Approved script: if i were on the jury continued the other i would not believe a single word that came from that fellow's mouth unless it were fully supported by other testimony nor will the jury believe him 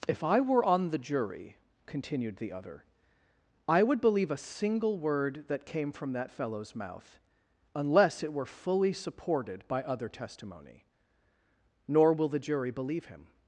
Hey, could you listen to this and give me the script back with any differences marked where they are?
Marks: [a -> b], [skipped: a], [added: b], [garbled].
if i were on the jury continued the other i would [skipped: not] believe a single word that came from that fellow's mouth unless it were fully supported by other testimony nor will the jury believe him